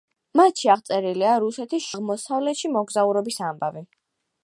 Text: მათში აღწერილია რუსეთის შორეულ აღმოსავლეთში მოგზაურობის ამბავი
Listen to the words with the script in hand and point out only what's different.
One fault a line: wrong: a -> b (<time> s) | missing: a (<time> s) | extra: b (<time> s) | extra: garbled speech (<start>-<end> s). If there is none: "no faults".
missing: შორეულ (1.9 s)